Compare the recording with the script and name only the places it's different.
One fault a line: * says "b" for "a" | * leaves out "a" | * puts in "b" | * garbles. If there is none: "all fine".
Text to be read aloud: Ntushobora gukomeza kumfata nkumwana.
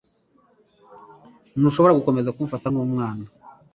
all fine